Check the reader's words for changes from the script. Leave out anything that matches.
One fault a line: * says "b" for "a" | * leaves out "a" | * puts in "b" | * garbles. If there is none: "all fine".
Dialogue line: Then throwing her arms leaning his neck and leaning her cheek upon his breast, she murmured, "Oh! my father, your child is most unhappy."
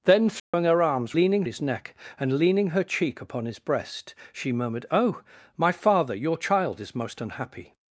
all fine